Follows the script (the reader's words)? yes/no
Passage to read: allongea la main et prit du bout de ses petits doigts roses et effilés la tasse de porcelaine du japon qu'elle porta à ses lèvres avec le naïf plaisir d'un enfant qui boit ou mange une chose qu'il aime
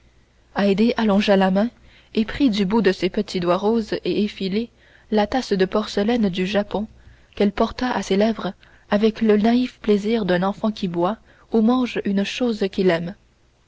yes